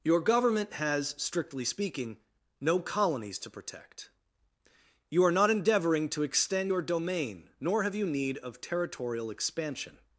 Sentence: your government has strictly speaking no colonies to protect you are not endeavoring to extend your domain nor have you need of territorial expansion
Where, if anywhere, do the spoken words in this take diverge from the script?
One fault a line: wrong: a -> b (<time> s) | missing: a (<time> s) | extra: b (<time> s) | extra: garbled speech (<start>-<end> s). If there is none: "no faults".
no faults